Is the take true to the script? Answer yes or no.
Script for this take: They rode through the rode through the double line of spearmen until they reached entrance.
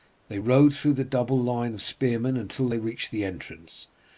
no